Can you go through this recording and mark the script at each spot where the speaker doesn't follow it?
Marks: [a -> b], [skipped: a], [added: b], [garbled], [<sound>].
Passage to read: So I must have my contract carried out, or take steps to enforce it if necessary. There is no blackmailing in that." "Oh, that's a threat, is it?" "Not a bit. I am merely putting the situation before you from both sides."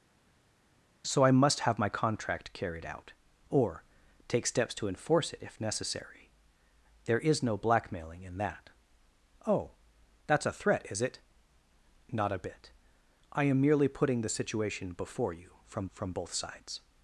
So I must have my contract carried out, or take steps to enforce it if necessary. There is no blackmailing in that." "Oh, that's a threat, is it?" "Not a bit. I am merely putting the situation before you from [added: from] both sides."